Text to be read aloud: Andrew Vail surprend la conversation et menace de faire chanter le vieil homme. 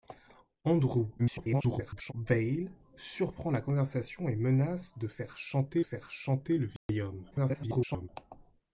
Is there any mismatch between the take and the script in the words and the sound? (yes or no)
yes